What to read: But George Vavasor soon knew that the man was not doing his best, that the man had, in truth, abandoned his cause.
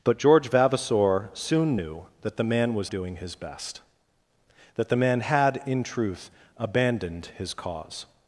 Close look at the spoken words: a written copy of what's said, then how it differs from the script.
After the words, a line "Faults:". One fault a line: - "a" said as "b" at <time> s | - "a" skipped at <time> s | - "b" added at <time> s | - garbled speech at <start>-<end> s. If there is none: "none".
But George Vavasor soon knew that the man was doing his best, that the man had, in truth, abandoned his cause.
Faults:
- "not" skipped at 2.9 s